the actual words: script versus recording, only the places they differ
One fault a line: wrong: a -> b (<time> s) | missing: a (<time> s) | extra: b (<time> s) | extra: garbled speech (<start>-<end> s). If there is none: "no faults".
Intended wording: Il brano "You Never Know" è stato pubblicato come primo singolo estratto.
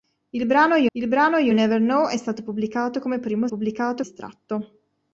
extra: il brano You (0.9 s)
wrong: singolo -> pubblicato (3.5 s)